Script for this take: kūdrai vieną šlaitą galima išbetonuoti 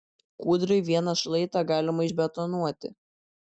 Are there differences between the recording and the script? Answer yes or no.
no